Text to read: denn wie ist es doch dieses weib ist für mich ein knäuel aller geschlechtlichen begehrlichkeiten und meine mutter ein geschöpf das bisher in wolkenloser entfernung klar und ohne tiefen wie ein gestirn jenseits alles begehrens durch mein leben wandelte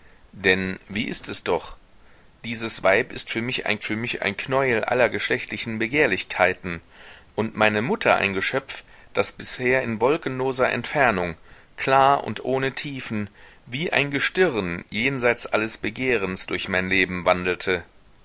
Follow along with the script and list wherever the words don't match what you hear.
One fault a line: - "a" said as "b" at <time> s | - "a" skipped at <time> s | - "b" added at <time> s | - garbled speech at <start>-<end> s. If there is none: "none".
- "für mich ein" added at 3.8 s